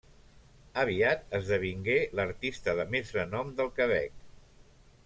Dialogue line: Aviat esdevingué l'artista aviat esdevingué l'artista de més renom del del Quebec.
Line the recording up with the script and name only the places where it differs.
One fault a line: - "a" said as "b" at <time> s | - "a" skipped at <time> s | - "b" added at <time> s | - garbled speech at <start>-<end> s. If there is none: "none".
- "aviat esdevingué l'artista" skipped at 2.8 s
- "del" skipped at 3.7 s